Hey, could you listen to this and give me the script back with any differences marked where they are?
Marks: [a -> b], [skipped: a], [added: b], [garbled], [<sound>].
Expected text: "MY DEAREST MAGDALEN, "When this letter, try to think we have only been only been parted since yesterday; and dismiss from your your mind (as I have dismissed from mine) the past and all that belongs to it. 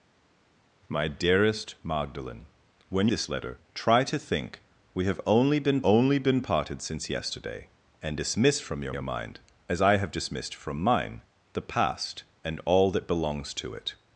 "MY DEAREST MAGDALEN, "When this letter, try to think we have only been only been parted since yesterday; and dismiss from your your mind (as I have dismissed from mine) the past and all that belongs to it.